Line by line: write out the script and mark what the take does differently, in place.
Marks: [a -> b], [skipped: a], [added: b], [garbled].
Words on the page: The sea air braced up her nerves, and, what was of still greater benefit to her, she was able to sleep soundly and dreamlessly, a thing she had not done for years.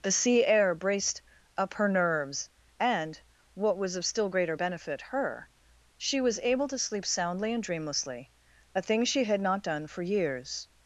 The sea air braced up her nerves, and, what was of still greater benefit [skipped: to] her, she was able to sleep soundly and dreamlessly, a thing she had not done for years.